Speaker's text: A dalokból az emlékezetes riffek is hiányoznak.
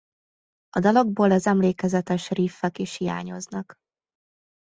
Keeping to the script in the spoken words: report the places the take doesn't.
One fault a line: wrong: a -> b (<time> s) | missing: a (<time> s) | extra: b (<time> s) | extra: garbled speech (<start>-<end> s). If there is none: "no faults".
no faults